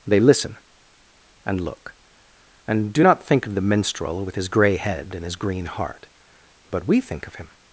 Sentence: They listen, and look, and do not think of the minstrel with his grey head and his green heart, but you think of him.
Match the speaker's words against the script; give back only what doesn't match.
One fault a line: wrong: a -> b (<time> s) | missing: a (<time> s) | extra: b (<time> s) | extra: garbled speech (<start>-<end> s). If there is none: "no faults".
wrong: you -> we (6.9 s)